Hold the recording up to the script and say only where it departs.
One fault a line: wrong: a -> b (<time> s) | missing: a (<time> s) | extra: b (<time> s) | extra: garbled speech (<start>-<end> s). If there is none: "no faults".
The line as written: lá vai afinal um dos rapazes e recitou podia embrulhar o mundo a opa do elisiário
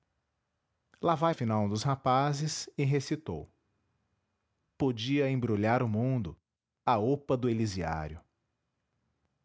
no faults